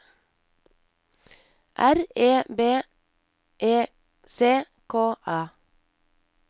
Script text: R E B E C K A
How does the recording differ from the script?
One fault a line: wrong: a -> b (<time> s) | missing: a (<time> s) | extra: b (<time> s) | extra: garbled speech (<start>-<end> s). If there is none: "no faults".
no faults